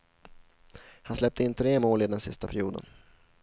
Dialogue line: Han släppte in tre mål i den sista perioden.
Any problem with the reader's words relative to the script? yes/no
no